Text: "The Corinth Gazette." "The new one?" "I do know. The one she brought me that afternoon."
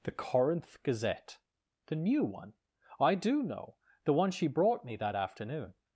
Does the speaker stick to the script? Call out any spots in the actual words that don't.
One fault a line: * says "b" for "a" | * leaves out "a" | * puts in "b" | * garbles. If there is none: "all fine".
all fine